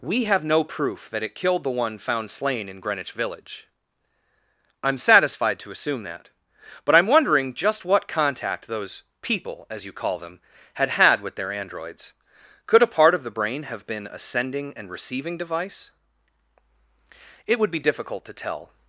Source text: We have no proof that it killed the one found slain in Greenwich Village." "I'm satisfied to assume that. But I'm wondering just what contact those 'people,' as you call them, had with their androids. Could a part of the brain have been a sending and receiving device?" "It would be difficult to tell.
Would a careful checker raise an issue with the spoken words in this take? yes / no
yes